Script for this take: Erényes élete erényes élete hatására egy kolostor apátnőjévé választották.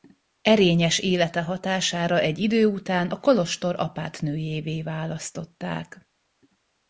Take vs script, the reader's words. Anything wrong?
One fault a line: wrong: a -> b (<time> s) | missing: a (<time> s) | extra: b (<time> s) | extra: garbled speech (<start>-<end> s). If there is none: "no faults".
wrong: erényes élete hatására egy -> hatására egy idő után a (1.4 s)